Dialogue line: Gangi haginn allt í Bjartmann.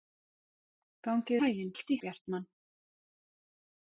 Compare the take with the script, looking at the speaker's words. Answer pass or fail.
pass